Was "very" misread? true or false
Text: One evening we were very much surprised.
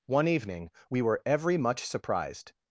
true